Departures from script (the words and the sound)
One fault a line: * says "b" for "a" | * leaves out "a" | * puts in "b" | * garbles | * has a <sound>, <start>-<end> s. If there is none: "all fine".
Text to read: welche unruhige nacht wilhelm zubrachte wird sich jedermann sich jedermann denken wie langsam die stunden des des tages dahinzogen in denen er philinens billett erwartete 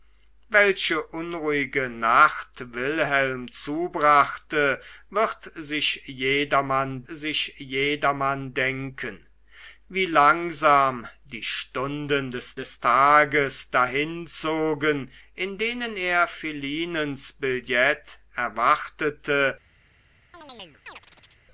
* has a chirp, 20.3-21.4 s